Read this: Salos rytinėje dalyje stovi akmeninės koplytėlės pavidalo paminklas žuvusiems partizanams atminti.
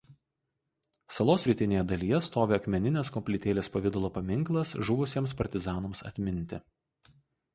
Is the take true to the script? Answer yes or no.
yes